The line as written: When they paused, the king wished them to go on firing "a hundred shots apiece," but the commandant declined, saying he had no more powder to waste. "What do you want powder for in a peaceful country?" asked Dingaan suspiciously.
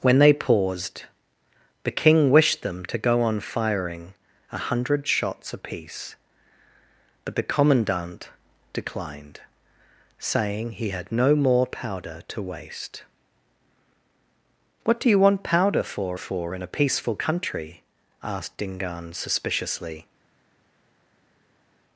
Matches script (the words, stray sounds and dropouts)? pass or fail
fail